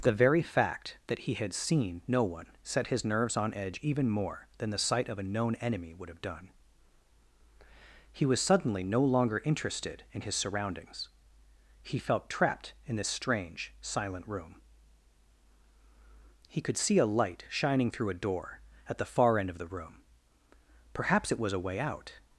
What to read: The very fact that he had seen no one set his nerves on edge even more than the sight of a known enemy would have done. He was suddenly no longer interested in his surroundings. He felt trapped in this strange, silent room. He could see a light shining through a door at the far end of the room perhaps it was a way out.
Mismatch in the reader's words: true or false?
false